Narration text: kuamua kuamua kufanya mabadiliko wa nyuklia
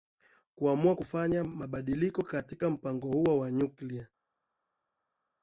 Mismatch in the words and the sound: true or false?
true